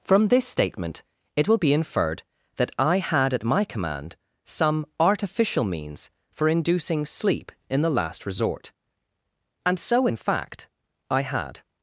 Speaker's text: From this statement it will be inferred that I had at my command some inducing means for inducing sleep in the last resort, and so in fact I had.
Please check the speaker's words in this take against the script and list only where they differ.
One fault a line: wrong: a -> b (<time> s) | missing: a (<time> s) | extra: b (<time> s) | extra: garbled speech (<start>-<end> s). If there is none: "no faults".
wrong: inducing -> artificial (5.0 s)